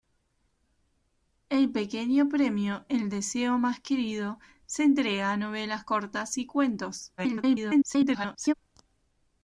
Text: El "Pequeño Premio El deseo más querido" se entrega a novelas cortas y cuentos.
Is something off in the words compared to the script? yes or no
yes